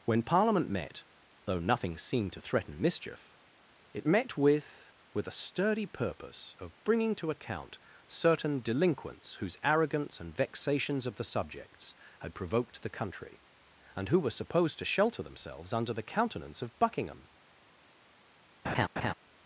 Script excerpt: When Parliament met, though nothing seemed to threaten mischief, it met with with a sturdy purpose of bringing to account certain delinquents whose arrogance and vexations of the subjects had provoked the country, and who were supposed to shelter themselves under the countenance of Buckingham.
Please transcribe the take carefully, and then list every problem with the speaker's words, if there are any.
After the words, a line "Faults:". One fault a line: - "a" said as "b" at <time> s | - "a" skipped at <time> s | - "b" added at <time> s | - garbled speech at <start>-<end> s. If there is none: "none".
When Parliament met, though nothing seemed to threaten mischief, it met with with a sturdy purpose of bringing to account certain delinquents whose arrogance and vexations of the subjects had provoked the country, and who were supposed to shelter themselves under the countenance of Buckingham.
Faults:
none